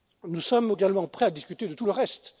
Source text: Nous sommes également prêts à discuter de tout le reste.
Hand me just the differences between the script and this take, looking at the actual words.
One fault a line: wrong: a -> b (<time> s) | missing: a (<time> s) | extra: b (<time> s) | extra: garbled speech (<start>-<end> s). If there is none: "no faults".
no faults